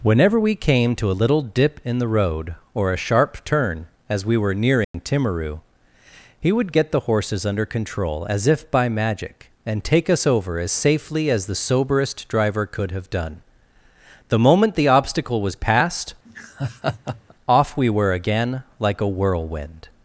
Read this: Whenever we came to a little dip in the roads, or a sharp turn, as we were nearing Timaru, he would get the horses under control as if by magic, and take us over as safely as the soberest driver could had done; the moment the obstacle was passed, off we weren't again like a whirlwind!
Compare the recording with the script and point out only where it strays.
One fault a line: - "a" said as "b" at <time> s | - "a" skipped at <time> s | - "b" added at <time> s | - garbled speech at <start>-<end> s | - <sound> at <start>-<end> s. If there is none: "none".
- "roads" said as "road" at 2.1 s
- dropout at 4.8-4.9 s
- "had" said as "have" at 12.9 s
- laugh at 16.3-17.3 s
- "weren't" said as "were" at 17.9 s